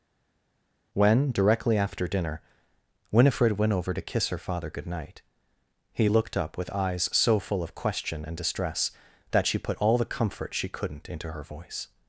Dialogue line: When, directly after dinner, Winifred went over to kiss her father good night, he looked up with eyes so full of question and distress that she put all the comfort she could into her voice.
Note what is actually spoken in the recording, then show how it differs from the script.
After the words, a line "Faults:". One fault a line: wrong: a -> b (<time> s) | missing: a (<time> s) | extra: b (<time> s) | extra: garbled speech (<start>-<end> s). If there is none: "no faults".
When, directly after dinner, Winifred went over to kiss her father good night, he looked up with eyes so full of question and distress that she put all the comfort she couldn't into her voice.
Faults:
wrong: could -> couldn't (10.7 s)